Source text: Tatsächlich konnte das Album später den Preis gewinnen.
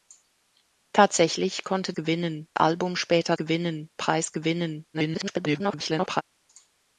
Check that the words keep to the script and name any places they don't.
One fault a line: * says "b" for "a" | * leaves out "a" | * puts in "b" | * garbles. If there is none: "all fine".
* says "gewinnen" for "das"
* says "gewinnen" for "den"
* garbles